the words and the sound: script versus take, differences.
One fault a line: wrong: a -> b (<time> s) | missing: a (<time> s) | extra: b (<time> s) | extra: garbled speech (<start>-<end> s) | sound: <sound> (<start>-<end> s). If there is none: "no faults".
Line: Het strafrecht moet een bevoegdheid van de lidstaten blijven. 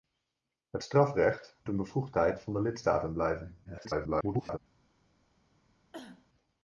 missing: moet (1.6 s)
extra: garbled speech (3.6-4.6 s)
sound: cough (5.9-6.3 s)